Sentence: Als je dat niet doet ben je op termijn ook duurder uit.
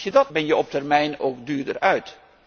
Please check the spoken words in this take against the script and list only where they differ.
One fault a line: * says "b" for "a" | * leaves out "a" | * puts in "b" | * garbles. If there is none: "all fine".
* leaves out "niet doet"